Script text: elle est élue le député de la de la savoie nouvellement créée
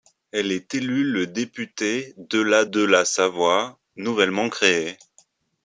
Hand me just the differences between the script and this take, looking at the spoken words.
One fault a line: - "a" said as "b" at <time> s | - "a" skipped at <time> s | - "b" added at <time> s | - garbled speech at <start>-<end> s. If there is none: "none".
none